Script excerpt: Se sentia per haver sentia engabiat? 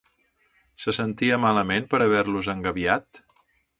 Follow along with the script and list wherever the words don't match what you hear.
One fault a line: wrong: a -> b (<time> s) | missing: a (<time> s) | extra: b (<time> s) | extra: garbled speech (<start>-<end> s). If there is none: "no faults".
extra: malament (1.4 s)
wrong: sentia -> los (2.3 s)